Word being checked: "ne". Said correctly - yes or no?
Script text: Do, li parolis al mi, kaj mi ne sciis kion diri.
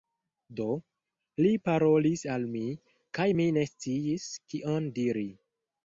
yes